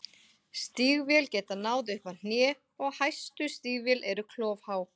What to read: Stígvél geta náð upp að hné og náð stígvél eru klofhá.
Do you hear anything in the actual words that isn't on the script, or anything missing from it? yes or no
yes